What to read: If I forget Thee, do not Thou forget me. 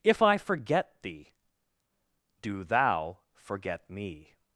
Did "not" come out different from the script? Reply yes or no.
yes